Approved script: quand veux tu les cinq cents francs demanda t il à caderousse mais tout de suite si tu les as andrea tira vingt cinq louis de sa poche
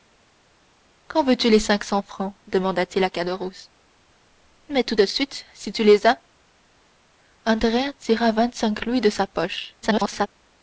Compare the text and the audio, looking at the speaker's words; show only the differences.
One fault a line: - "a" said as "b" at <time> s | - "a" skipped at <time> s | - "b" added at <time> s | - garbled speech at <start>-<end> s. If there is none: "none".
- garbled speech at 9.8-10.3 s